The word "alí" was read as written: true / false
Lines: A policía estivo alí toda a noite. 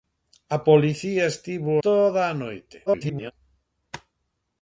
false